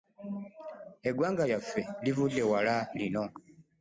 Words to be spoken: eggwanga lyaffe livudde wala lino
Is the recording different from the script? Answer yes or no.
no